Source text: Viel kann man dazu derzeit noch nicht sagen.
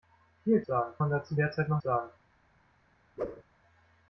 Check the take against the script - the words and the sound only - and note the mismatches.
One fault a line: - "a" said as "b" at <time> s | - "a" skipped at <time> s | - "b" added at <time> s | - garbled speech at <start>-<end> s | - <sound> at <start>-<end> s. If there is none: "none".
- "kann" said as "sagen" at 0.7 s
- "nicht" skipped at 1.8 s
- whoosh at 3.2-3.4 s